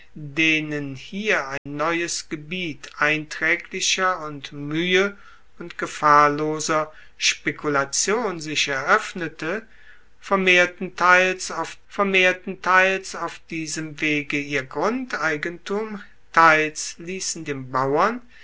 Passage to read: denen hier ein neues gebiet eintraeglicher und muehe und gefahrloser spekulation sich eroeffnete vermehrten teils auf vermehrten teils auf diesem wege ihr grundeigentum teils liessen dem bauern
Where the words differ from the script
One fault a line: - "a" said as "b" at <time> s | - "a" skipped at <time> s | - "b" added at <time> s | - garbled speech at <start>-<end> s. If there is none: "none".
none